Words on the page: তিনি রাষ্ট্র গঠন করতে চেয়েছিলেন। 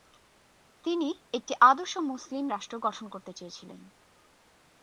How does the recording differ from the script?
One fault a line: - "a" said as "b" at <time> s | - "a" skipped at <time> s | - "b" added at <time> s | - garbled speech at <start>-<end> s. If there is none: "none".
- "একটি আদর্শ মুসলিম" added at 1.3 s